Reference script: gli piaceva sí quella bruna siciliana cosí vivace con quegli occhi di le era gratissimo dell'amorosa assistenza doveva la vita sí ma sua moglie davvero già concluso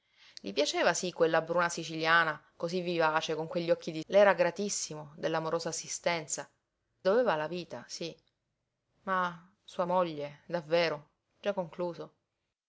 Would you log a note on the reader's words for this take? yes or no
no